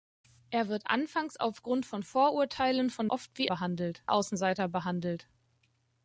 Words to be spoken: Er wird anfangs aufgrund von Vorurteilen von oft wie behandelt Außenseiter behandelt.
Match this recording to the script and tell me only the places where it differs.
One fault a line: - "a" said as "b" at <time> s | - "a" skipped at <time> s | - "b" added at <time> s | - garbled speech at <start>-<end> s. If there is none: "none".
none